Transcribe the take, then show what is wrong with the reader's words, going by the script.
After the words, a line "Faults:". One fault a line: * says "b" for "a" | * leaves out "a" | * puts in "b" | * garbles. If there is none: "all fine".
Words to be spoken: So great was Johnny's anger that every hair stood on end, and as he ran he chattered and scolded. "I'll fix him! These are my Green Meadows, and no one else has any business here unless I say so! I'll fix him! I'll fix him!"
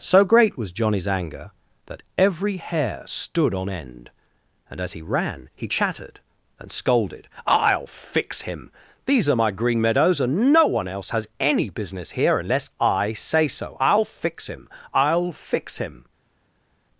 So great was Johnny's anger that every hair stood on end, and as he ran he chattered and scolded. "I'll fix him! These are my Green Meadows, and no one else has any business here unless I say so! I'll fix him! I'll fix him!"
Faults:
all fine